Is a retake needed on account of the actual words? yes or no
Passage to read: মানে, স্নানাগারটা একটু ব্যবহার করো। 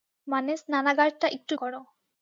yes